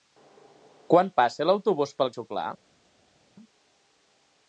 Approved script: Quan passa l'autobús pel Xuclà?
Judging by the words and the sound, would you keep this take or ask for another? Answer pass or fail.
pass